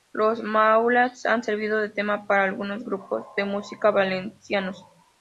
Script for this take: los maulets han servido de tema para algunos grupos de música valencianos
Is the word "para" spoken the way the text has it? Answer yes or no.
yes